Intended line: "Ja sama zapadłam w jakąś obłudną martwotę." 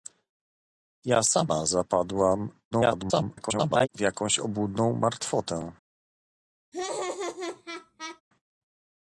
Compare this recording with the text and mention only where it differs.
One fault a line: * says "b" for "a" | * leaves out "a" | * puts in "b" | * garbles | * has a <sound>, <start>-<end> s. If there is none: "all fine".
* garbles
* has a laugh, 6.7-8.2 s